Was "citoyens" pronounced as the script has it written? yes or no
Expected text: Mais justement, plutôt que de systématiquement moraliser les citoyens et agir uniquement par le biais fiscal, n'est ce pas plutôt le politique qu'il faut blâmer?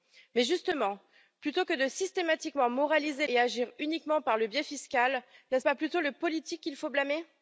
no